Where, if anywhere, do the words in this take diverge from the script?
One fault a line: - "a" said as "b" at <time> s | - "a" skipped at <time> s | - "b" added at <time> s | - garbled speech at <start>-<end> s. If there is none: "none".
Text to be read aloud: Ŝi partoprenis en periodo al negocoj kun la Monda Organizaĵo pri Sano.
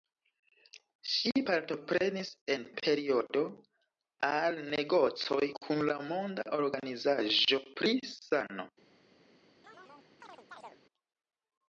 none